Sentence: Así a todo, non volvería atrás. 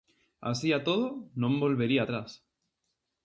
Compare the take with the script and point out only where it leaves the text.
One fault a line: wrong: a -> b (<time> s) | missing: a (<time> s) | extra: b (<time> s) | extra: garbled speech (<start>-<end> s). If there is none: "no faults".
no faults